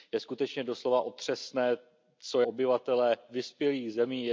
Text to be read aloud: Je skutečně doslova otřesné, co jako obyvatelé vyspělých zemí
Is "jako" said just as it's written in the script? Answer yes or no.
no